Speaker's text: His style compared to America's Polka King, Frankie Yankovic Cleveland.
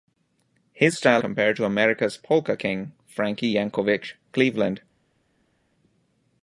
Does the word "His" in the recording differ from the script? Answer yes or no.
no